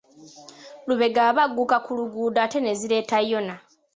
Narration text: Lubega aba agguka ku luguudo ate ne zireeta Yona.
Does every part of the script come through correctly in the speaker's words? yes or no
yes